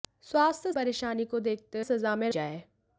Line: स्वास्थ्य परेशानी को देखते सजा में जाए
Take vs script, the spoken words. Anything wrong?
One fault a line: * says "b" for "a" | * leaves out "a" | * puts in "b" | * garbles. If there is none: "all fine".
all fine